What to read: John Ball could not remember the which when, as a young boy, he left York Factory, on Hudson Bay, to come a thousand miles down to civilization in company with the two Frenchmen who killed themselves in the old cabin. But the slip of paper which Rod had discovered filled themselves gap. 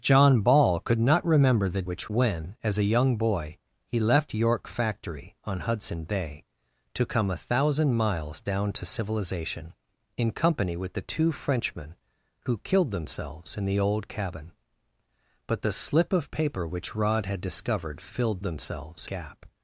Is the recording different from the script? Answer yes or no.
no